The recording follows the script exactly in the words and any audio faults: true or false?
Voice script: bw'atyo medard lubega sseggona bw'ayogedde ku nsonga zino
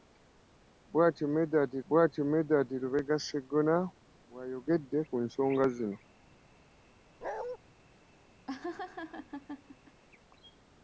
false